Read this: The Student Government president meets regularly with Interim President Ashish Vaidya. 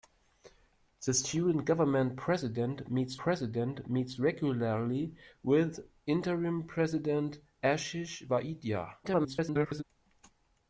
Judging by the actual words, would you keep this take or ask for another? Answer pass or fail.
fail